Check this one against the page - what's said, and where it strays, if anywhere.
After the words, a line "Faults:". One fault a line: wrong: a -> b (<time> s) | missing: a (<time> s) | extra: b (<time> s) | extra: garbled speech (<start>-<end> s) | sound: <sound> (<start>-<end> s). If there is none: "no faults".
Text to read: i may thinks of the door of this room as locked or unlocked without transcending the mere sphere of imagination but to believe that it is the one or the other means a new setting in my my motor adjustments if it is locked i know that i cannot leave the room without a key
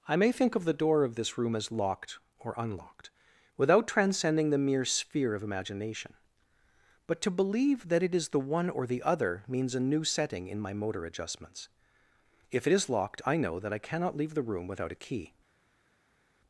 i may think of the door of this room as locked or unlocked without transcending the mere sphere of imagination but to believe that it is the one or the other means a new setting in my motor adjustments if it is locked i know that i cannot leave the room without a key
Faults:
wrong: thinks -> think (0.3 s)
missing: my (10.7 s)